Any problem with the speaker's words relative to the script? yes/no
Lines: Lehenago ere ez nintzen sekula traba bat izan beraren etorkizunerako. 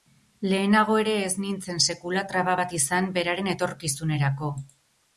no